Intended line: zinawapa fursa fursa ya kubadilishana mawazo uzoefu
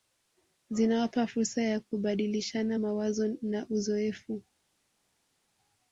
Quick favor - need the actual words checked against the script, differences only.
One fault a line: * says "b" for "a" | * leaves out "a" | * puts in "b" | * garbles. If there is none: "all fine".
* leaves out "fursa"
* puts in "na"